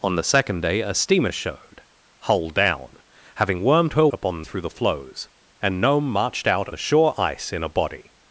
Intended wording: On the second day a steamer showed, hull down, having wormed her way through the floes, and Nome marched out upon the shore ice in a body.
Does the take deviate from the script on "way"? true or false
true